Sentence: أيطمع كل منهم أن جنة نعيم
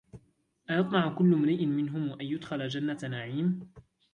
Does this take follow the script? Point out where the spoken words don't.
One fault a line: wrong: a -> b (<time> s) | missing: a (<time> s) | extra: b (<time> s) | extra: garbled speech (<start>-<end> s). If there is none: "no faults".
extra: امرئ (1.3 s)
extra: يدخل (2.2 s)